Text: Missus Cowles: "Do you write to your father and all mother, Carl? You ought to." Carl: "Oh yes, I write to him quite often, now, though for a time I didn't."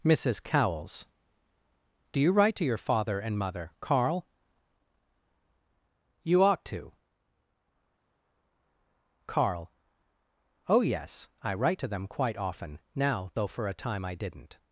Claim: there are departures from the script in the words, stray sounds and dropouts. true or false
true